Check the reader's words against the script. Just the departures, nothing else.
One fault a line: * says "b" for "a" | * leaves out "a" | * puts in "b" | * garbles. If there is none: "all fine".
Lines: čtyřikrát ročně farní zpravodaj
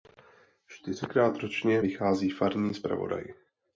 * puts in "vychází"